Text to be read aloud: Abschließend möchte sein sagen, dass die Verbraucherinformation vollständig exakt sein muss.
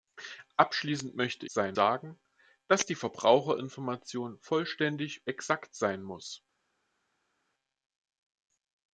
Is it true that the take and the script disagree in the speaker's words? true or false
false